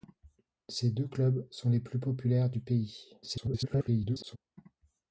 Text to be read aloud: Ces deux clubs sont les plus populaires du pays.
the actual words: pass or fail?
fail